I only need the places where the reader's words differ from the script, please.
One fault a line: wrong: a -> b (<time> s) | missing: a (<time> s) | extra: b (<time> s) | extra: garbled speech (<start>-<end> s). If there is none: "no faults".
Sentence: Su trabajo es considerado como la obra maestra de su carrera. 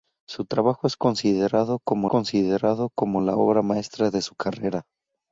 extra: considerado como (2.1 s)